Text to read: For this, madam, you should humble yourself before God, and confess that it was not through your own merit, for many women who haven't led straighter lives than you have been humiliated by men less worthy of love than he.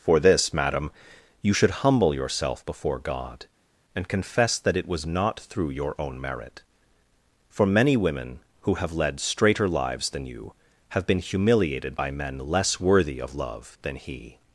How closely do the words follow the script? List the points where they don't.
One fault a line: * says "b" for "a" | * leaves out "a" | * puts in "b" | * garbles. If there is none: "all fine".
* says "have" for "haven't"